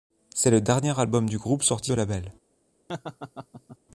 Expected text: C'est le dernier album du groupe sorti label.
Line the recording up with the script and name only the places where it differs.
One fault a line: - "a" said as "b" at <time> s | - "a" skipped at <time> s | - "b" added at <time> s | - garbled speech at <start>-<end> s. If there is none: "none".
none